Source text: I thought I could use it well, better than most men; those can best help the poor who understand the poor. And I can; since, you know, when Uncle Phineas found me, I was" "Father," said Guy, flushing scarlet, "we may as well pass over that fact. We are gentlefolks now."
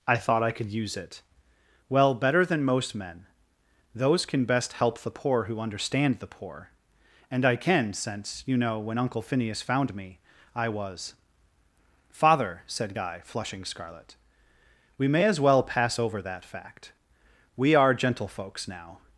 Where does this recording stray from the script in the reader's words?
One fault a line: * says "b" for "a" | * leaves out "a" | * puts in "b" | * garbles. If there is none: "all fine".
all fine